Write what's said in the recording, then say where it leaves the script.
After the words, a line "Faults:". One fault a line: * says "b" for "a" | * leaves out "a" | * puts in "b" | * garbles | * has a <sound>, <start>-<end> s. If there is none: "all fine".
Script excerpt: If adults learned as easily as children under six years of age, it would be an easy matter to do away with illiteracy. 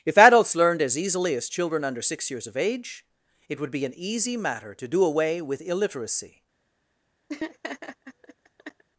If adults learned as easily as children under six years of age, it would be an easy matter to do away with illiteracy.
Faults:
* has a laugh, 7.3-8.8 s